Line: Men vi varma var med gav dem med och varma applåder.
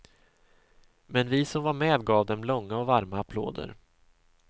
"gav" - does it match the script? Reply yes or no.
yes